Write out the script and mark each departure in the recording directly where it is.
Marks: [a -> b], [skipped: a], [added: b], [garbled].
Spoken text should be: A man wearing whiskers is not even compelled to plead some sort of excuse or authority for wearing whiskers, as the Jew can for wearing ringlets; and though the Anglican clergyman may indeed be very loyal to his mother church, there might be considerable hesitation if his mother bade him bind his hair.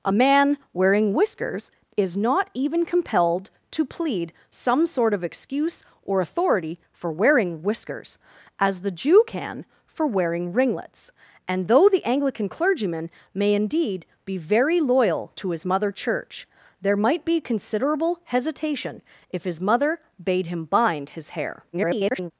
A man wearing whiskers is not even compelled to plead some sort of excuse or authority for wearing whiskers, as the Jew can for wearing ringlets; and though the Anglican clergyman may indeed be very loyal to his mother church, there might be considerable hesitation if his mother bade him bind his hair. [garbled]